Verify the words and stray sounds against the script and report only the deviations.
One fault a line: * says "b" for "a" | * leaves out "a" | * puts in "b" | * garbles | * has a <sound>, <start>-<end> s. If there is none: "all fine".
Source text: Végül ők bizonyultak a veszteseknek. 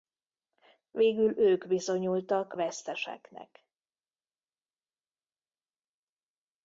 * leaves out "a"